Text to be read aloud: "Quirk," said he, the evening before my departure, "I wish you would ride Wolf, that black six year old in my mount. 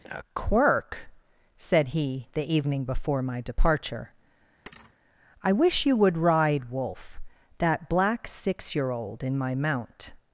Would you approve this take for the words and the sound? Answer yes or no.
no